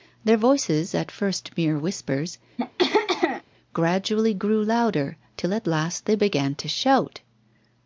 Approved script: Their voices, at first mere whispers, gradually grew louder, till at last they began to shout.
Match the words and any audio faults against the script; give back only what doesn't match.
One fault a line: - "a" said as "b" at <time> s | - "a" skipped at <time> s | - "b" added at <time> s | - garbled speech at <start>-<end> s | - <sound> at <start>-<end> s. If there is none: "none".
- throat clearing at 2.6-3.4 s